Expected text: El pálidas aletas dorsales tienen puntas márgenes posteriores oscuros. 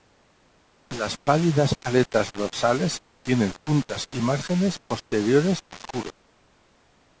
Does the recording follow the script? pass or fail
fail